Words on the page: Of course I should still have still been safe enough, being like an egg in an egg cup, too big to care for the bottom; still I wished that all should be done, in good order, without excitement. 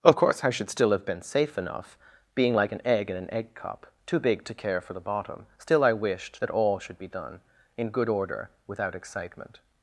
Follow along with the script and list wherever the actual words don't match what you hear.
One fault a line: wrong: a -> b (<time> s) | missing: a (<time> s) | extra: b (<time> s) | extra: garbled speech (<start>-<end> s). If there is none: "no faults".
missing: still (1.1 s)